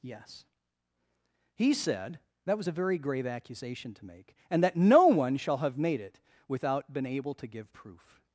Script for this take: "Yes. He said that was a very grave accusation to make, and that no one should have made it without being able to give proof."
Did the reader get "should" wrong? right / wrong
wrong